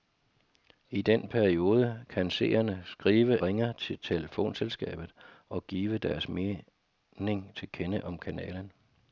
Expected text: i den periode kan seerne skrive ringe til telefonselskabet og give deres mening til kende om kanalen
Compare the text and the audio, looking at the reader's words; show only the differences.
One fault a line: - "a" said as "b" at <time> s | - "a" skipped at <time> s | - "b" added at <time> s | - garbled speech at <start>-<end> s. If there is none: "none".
none